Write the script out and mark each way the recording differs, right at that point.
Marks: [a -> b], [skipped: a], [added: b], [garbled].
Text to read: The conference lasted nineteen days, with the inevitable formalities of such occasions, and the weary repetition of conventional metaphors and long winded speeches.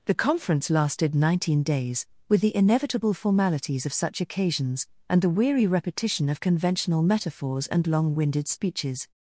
The conference lasted nineteen days, with the inevitable formalities of such occasions, and the weary repetition of conventional metaphors and long winded speeches.